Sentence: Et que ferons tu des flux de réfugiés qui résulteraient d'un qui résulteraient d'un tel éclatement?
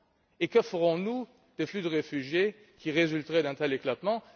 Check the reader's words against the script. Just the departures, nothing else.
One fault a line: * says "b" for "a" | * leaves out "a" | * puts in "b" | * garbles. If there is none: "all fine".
* says "nous" for "tu"
* leaves out "qui résulteraient d'un"